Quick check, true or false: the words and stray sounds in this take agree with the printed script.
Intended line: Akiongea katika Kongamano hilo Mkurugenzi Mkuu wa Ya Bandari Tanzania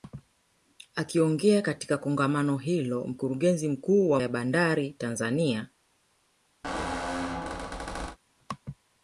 false